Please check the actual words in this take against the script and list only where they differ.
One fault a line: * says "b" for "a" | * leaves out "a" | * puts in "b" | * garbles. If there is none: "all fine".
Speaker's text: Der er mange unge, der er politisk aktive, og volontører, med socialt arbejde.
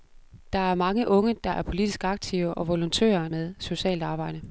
all fine